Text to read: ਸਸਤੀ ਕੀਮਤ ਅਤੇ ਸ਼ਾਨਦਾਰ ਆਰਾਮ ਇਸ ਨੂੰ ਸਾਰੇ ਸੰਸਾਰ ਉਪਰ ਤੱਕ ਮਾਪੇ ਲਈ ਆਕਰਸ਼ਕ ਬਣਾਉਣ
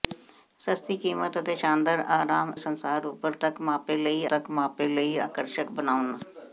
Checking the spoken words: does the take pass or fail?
fail